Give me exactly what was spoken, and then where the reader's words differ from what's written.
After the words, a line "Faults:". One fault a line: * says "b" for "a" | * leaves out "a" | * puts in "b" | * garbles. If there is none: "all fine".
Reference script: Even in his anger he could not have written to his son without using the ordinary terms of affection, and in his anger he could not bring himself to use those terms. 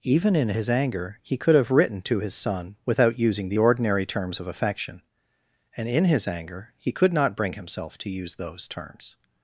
Even in his anger he could have written to his son without using the ordinary terms of affection, and in his anger he could not bring himself to use those terms.
Faults:
* leaves out "not"